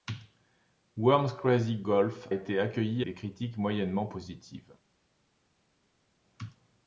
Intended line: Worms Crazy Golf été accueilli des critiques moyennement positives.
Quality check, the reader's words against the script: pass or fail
pass